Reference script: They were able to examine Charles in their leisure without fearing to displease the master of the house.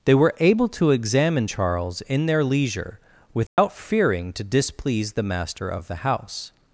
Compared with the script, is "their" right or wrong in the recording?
right